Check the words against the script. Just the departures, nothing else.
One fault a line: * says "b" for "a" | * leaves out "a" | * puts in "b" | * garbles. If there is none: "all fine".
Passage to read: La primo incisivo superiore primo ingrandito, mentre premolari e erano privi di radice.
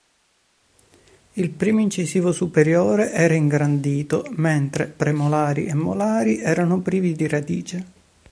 * says "Il" for "La"
* says "era" for "primo"
* puts in "molari"